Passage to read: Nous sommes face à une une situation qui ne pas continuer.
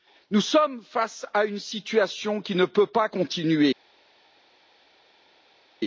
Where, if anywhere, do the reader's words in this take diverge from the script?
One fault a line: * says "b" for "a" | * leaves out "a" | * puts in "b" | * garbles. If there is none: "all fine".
* leaves out "une"
* puts in "peut"